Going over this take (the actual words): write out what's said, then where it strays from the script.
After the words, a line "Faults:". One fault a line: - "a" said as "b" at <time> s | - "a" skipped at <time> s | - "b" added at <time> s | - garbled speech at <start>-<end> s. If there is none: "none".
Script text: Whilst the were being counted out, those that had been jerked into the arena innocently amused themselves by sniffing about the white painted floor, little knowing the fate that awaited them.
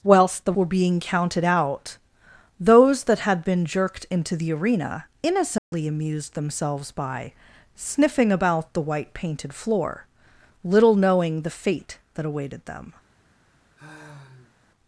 Whilst the were being counted out, those that had been jerked into the arena innocently amused themselves by sniffing about the white painted floor, little knowing the fate that awaited them.
Faults:
none